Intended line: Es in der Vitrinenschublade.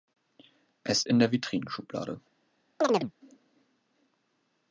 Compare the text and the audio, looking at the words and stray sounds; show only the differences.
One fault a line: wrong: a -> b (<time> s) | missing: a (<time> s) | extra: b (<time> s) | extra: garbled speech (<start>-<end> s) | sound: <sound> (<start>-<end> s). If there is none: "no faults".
sound: chirp (2.8-3.1 s)